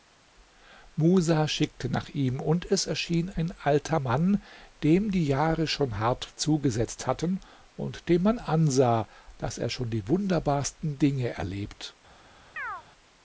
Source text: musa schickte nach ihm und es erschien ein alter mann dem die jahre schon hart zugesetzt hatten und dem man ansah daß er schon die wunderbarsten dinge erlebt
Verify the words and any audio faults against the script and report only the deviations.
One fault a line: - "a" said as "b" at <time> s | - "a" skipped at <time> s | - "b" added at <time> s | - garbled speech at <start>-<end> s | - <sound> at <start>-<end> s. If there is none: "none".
- chirp at 12.6-12.8 s